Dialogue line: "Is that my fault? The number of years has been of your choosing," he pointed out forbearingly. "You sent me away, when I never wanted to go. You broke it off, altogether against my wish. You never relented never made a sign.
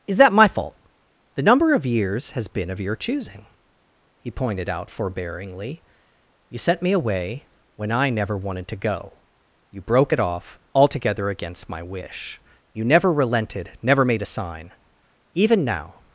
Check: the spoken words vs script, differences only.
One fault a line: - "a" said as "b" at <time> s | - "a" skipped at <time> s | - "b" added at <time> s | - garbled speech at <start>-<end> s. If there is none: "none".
- "Even now" added at 15.3 s